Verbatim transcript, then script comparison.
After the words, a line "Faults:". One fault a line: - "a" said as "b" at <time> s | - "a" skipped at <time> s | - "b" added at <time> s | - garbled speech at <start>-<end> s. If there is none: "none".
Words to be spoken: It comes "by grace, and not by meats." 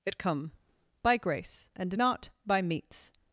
It come "by grace, and not by meats."
Faults:
- "comes" said as "come" at 0.2 s